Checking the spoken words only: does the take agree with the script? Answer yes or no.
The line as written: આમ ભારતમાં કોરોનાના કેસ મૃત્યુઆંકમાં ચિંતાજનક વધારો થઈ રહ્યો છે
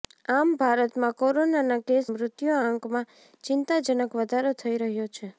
yes